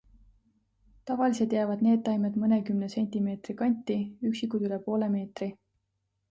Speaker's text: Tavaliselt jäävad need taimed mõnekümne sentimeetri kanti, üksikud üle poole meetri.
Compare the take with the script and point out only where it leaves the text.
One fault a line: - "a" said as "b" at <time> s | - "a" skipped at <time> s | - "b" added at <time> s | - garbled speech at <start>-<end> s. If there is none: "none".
none